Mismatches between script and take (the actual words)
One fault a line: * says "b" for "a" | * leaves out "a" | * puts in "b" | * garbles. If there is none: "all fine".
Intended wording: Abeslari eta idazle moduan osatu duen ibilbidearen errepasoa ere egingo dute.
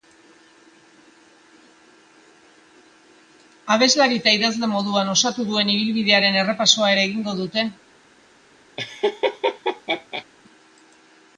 all fine